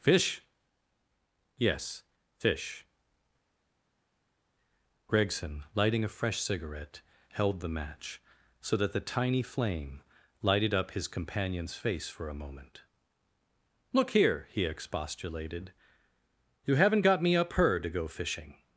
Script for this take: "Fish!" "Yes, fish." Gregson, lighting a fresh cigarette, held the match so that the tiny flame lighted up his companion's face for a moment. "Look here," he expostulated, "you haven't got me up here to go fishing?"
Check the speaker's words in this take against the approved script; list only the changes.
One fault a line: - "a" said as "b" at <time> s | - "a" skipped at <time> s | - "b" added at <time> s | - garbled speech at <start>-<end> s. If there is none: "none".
- "here" said as "her" at 17.5 s